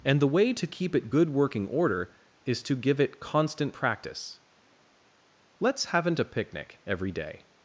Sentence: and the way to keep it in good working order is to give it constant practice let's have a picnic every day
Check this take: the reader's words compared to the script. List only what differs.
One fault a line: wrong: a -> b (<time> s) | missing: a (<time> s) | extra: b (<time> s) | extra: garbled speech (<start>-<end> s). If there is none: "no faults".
missing: in (1.1 s)
wrong: have -> haven't (5.9 s)